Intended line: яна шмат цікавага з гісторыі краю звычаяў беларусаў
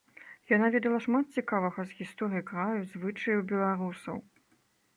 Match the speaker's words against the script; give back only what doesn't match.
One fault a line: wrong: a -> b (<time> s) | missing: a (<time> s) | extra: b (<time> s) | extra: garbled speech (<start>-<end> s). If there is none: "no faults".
extra: ведала (0.8 s)